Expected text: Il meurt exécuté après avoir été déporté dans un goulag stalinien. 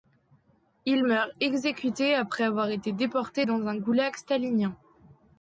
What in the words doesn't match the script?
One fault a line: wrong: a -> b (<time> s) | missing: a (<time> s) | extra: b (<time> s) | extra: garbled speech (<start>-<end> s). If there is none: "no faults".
no faults